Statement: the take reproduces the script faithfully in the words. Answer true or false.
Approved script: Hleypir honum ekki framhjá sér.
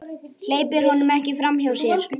true